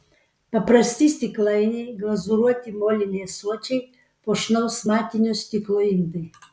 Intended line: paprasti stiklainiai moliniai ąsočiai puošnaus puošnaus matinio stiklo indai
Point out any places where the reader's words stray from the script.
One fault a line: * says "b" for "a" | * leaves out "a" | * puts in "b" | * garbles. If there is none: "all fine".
* puts in "glazūruoti"
* leaves out "puošnaus"